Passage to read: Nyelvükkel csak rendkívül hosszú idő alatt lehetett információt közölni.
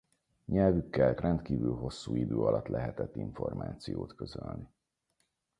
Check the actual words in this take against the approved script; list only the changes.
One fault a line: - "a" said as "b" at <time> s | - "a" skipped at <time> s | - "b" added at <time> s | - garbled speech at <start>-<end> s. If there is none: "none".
- "csak" skipped at 1.2 s